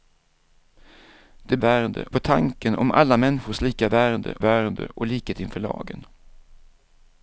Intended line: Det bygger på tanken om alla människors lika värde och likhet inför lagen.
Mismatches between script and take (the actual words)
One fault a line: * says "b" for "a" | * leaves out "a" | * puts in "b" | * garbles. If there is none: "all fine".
* says "värde" for "bygger"
* puts in "värde"